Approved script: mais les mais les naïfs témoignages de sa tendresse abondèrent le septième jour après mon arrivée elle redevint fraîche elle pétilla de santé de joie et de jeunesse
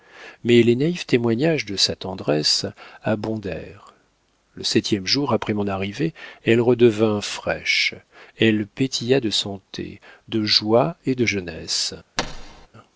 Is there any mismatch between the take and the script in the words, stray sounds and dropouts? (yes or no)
yes